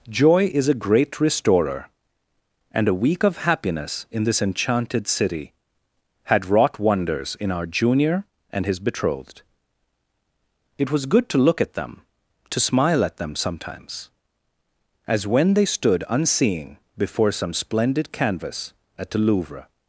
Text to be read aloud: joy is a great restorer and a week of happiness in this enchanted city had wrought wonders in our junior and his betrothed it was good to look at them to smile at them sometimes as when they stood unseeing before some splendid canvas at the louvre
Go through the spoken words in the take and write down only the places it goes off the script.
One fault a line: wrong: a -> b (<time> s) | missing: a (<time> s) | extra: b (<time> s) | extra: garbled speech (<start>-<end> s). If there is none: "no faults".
no faults